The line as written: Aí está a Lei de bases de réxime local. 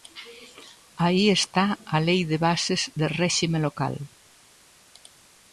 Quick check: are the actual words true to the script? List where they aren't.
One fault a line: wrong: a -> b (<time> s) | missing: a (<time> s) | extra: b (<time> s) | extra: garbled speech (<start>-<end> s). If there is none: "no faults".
no faults